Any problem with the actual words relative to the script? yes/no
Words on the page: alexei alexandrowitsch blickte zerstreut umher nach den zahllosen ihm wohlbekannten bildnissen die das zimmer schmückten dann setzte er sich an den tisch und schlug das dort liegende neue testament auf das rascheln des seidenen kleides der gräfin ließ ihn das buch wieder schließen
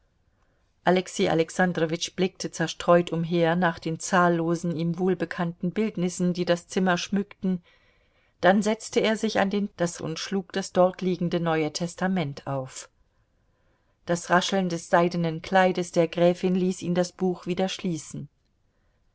yes